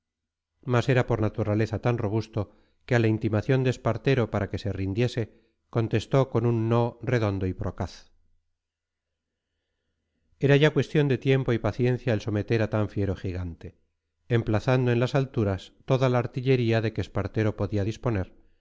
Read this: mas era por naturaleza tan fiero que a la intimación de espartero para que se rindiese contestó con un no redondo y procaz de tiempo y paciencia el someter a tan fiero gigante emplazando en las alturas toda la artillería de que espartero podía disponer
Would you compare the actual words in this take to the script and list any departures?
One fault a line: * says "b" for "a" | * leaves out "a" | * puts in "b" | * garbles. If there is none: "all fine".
* says "robusto" for "fiero"
* puts in "era ya cuestión"